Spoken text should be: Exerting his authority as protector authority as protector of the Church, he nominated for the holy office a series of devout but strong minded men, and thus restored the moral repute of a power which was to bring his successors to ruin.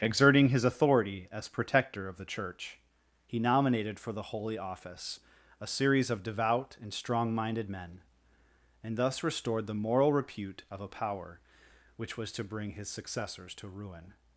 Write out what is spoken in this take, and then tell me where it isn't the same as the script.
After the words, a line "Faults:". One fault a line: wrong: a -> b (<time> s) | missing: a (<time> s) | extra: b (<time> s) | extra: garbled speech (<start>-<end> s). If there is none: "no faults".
Exerting his authority as protector of the Church, he nominated for the holy office a series of devout and strong minded men, and thus restored the moral repute of a power which was to bring his successors to ruin.
Faults:
missing: authority as protector (2.1 s)
wrong: but -> and (6.8 s)